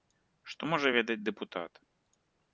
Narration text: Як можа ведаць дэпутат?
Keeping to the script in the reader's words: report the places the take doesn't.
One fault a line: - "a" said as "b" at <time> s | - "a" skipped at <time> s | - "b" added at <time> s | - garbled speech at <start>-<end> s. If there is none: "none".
- "Як" said as "Што" at 0.5 s